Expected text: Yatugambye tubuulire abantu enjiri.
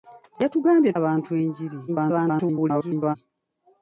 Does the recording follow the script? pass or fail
fail